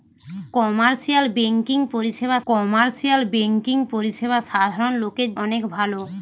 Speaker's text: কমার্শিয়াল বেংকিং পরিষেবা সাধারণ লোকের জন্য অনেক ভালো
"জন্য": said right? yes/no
no